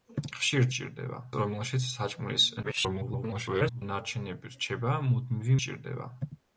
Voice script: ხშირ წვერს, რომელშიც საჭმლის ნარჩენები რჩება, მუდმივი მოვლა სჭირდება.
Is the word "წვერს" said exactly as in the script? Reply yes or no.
no